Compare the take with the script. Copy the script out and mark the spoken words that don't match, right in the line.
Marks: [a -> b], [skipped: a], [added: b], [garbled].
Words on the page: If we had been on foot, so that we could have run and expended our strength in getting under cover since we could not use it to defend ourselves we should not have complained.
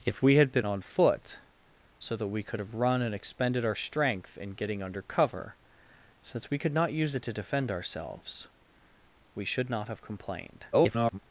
If we had been on foot, so that we could have run and expended our strength in getting under cover since we could not use it to defend ourselves we should not have complained. [garbled]